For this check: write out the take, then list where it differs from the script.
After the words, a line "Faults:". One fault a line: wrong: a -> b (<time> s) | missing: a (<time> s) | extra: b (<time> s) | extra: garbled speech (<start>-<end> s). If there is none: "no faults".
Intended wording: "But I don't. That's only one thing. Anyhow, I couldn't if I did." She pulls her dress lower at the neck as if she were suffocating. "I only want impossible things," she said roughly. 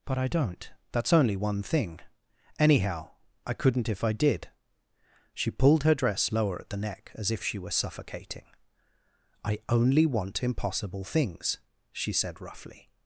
"But I don't. That's only one thing. Anyhow, I couldn't if I did." She pulled her dress lower at the neck as if she were suffocating. "I only want impossible things," she said roughly.
Faults:
wrong: pulls -> pulled (5.5 s)